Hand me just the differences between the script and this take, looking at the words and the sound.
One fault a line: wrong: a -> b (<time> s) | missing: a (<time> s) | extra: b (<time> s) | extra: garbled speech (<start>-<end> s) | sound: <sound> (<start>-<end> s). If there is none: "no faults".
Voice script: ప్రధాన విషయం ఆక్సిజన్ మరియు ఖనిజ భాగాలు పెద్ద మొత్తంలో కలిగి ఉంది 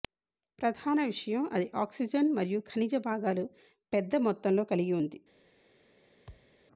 extra: అది (1.5 s)
sound: thud (6.3-6.6 s)